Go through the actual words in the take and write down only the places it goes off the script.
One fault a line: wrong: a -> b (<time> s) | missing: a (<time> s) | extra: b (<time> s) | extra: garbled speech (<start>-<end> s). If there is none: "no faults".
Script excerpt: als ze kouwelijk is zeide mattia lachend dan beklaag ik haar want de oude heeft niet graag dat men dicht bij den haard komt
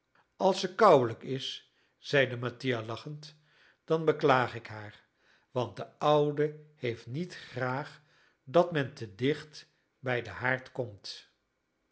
extra: te (8.9 s)